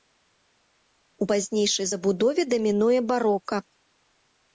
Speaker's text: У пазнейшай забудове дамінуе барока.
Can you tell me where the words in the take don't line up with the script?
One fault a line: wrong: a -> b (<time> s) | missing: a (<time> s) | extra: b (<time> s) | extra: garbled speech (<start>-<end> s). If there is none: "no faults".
no faults